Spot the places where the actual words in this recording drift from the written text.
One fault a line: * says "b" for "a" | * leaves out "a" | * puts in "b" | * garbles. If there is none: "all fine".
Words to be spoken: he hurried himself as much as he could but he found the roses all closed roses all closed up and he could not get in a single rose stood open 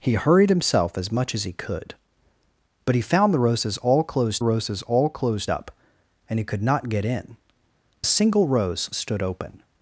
all fine